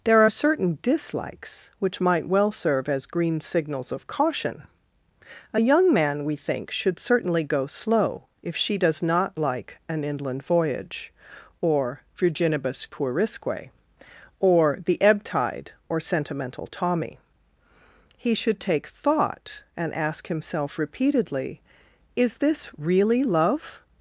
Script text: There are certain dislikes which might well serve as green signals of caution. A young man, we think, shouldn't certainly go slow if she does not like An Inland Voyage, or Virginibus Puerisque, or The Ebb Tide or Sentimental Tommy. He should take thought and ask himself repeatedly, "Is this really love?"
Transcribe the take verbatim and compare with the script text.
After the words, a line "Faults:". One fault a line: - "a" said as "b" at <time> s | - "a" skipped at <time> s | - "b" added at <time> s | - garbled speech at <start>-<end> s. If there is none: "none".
There are certain dislikes which might well serve as green signals of caution. A young man, we think, should certainly go slow if she does not like An Inland Voyage, or Virginibus Puerisque, or The Ebb Tide or Sentimental Tommy. He should take thought and ask himself repeatedly, "Is this really love?"
Faults:
- "shouldn't" said as "should" at 6.7 s